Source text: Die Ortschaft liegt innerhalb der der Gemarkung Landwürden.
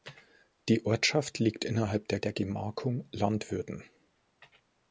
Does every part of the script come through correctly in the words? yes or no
yes